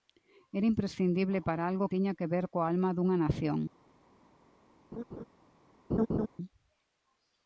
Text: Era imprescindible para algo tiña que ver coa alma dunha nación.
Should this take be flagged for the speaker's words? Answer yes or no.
no